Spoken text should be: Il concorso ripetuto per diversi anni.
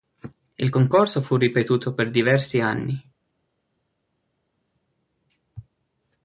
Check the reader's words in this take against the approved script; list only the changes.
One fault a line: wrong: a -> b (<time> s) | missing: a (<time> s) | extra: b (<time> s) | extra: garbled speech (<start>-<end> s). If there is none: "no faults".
extra: fu (1.2 s)